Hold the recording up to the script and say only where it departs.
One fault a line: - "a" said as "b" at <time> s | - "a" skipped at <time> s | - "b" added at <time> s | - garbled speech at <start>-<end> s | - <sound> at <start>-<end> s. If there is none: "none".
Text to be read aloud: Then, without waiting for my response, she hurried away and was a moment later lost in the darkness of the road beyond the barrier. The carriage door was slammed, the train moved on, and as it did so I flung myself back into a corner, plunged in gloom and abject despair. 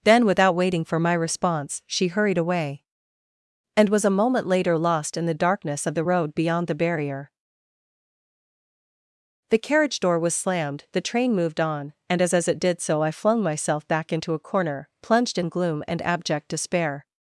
- "as" added at 12.3 s